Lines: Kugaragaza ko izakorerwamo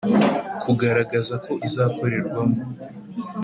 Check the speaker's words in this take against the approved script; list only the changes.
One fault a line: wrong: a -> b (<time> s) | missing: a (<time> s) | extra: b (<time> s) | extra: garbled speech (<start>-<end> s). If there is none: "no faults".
no faults